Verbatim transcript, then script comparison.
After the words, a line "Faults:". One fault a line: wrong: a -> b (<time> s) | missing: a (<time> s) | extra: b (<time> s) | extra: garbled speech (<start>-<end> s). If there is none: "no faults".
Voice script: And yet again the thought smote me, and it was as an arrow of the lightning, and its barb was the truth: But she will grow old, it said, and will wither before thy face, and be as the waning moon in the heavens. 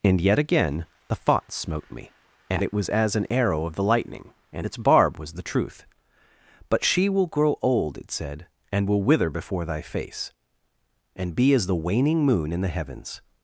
And yet again the thought smote me, and it was as an arrow of the lightning, and its barb was the truth: But she will grow old, it said, and will wither before thy face, and be as the waning moon in the heavens.
Faults:
no faults